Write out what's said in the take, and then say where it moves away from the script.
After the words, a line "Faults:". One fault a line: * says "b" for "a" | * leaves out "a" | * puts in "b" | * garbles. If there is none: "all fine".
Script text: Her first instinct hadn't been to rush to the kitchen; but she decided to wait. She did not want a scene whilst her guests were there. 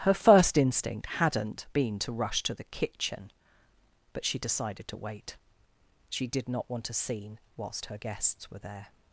Her first instinct hadn't been to rush to the kitchen; but she decided to wait. She did not want a scene whilst her guests were there.
Faults:
all fine